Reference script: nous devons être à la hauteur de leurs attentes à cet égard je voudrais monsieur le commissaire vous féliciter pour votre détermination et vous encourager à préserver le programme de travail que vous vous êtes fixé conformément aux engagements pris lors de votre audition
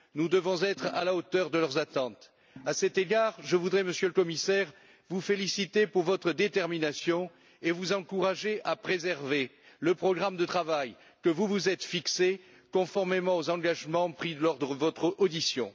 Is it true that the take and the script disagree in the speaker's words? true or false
false